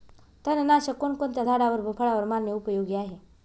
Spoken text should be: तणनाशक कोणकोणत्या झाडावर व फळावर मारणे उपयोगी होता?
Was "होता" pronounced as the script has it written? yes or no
no